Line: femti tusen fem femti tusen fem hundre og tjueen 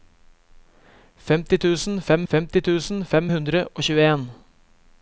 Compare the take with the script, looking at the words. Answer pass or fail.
pass